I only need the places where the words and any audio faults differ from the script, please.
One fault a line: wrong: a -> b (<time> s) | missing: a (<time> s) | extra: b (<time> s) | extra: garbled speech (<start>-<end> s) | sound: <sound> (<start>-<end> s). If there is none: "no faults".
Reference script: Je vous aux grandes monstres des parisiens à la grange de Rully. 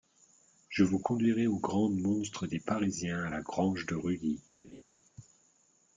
extra: conduirai (1.0 s)
sound: laugh (4.6-4.8 s)